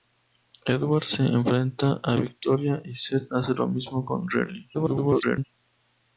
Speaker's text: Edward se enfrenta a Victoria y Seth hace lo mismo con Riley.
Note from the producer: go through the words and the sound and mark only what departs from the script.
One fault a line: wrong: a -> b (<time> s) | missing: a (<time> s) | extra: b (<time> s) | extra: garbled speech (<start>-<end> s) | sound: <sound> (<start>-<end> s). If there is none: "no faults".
extra: garbled speech (4.7-5.5 s)